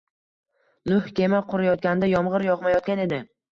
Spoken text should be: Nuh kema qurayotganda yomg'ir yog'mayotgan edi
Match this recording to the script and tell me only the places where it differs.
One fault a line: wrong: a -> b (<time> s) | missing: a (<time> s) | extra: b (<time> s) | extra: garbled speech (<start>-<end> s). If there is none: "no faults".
no faults